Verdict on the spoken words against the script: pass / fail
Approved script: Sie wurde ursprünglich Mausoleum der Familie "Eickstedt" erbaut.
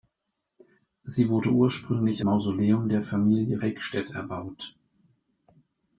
pass